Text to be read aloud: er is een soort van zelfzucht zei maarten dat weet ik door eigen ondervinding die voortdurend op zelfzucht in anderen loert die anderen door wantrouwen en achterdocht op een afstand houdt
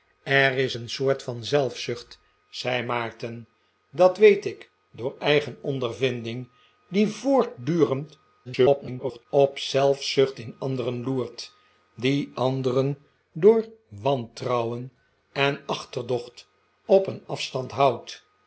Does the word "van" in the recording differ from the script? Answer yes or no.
no